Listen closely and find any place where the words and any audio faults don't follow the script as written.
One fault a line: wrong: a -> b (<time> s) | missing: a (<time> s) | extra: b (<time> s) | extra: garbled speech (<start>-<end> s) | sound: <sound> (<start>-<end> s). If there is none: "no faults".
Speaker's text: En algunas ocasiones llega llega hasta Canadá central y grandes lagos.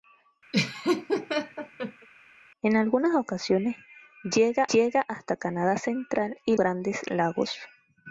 sound: laugh (0.5-2.1 s)